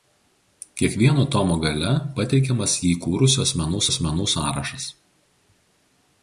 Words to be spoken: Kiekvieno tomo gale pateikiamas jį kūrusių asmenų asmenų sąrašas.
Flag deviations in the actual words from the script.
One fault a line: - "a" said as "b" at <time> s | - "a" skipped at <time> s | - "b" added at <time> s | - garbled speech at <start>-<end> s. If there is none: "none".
none